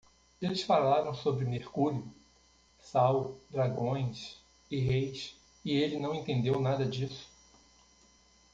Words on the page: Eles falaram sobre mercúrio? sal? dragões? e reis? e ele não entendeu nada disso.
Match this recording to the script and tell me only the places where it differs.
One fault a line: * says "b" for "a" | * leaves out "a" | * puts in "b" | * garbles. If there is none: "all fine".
all fine